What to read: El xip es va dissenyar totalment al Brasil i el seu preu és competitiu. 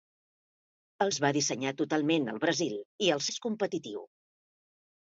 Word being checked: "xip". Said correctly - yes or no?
no